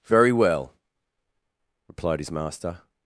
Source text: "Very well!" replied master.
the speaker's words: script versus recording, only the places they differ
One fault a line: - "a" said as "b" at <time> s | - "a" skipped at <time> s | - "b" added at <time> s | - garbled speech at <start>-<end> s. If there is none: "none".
- "his" added at 2.2 s